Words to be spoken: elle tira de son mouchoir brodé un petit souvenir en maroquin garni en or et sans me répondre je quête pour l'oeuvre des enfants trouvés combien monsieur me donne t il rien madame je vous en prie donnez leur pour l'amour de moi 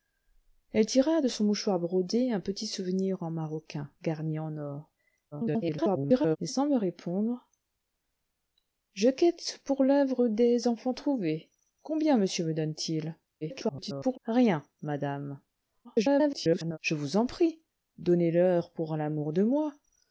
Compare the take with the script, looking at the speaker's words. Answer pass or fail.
fail